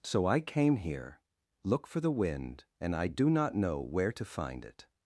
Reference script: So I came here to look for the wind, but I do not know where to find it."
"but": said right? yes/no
no